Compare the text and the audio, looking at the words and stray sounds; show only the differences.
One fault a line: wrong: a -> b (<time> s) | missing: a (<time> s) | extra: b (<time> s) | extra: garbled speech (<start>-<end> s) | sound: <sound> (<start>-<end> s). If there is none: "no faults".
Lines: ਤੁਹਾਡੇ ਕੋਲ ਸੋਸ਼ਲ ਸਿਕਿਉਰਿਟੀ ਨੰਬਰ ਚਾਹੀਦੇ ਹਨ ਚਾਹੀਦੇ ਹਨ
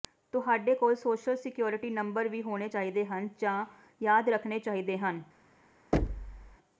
extra: ਵੀ ਹੋਣੇ (2.3 s)
extra: ਜਾਂ ਯਾਦ ਰੱਖਣੇ (3.4 s)
sound: thud (5.9-6.6 s)